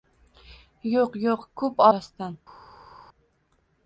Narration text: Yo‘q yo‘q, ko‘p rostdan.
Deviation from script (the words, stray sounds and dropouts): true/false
false